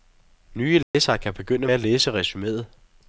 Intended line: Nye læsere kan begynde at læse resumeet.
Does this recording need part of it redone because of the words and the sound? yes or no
yes